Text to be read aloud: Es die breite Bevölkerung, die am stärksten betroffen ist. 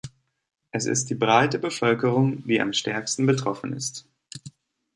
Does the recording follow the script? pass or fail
fail